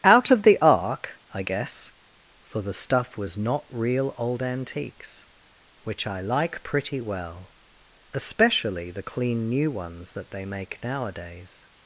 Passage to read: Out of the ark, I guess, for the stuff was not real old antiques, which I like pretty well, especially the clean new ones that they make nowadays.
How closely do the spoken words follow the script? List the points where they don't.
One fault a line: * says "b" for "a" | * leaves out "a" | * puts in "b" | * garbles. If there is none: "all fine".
all fine